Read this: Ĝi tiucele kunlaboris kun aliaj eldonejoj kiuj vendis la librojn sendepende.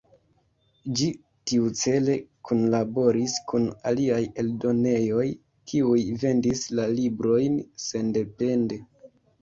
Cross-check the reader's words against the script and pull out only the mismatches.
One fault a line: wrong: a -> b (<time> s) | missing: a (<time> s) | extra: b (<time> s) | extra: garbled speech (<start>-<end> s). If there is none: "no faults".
no faults